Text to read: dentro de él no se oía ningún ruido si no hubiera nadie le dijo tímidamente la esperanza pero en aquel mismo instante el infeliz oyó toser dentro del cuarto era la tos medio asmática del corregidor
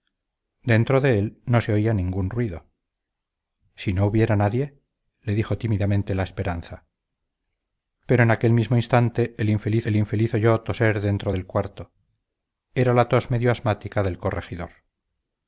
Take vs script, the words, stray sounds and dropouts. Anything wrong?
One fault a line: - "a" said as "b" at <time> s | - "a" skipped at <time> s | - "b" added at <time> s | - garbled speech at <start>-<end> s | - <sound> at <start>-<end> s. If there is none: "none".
- "el infeliz" added at 9.8 s